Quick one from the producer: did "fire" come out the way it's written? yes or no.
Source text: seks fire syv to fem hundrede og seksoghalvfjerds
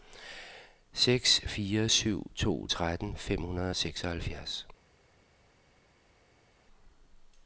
yes